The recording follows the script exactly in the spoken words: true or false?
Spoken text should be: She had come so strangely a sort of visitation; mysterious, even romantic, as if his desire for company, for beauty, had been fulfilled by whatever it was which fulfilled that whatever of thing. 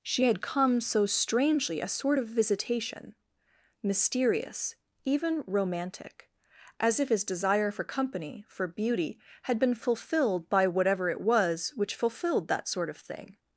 false